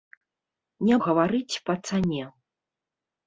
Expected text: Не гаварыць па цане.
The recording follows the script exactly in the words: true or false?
true